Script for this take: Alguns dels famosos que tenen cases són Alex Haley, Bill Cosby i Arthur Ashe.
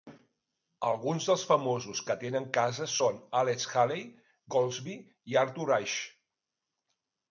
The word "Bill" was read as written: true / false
false